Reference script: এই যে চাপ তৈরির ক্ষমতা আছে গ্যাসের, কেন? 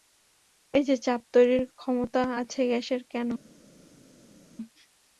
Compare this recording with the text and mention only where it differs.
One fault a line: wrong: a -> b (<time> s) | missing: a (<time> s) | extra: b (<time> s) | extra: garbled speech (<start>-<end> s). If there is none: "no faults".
no faults